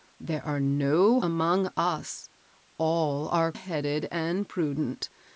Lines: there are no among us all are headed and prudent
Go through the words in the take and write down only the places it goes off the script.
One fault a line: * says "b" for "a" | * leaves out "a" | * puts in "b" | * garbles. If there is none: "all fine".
all fine